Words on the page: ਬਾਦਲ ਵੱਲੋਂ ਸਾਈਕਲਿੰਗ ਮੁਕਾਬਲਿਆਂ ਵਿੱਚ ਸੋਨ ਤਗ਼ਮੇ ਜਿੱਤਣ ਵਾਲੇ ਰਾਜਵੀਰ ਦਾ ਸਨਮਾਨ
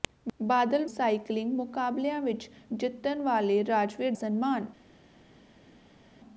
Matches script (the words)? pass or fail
fail